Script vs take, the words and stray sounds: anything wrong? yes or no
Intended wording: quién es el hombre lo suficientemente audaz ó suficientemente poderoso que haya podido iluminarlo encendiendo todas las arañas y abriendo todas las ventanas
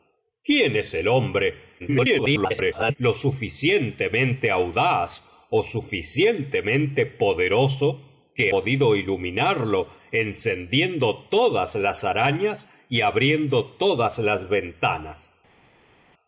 yes